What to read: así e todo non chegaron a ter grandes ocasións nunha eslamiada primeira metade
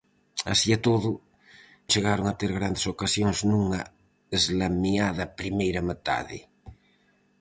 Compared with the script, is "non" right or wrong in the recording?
wrong